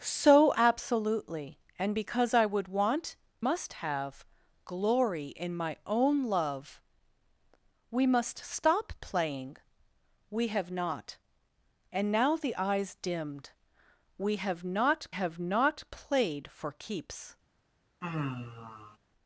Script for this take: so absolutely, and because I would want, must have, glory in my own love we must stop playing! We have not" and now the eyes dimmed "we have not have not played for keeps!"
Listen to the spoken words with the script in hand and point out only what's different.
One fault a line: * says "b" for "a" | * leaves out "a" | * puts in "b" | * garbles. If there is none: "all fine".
all fine